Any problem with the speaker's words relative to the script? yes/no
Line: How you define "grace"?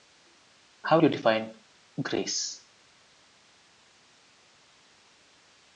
no